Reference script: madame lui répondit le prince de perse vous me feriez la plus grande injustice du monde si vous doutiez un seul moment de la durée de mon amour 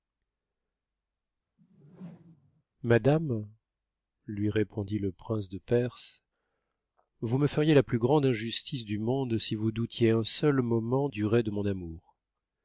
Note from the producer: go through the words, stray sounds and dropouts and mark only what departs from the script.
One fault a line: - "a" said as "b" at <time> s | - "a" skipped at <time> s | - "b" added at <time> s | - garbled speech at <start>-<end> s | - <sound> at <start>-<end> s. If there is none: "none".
- whoosh at 1.6-2.6 s
- "de la" skipped at 11.1 s